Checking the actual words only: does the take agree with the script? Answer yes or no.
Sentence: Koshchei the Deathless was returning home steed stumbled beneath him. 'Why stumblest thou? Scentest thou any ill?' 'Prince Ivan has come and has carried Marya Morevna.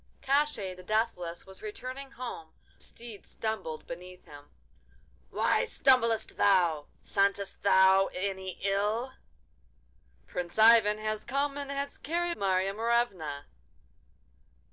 yes